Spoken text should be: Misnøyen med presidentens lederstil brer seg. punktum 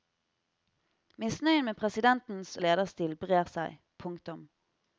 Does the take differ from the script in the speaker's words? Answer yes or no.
no